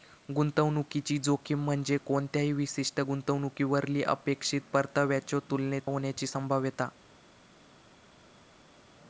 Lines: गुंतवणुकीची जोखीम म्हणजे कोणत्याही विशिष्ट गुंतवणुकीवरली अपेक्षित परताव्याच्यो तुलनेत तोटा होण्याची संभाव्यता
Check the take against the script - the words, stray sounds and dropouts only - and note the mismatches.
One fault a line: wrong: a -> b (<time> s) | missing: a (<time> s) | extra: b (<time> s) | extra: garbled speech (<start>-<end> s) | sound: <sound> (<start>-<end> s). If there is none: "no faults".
missing: तोटा (5.8 s)